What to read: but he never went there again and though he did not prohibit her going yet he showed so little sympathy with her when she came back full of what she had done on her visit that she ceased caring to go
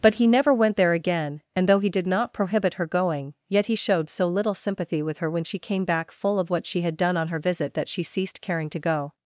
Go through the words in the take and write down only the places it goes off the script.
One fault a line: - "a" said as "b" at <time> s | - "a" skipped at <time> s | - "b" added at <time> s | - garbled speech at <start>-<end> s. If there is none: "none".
none